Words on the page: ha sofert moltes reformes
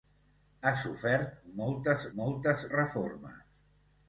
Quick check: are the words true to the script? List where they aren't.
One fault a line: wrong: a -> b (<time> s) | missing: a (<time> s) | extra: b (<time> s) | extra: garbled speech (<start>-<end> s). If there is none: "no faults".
extra: moltes (2.2 s)